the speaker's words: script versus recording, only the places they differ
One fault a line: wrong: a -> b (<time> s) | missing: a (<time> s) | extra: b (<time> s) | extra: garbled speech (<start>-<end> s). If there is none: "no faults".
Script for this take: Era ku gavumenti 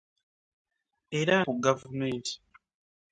no faults